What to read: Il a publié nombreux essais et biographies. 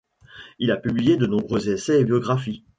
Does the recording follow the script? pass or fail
fail